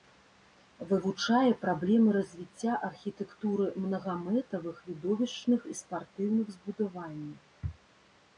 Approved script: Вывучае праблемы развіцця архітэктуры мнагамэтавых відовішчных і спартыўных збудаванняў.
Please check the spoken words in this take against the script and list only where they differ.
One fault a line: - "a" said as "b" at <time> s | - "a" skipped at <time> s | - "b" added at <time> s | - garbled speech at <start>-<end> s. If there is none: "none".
none